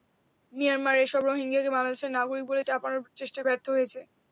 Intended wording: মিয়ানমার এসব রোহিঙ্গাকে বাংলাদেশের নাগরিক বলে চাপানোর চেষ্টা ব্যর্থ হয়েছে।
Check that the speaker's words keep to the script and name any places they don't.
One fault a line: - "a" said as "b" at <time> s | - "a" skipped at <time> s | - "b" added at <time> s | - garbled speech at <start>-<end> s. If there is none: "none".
none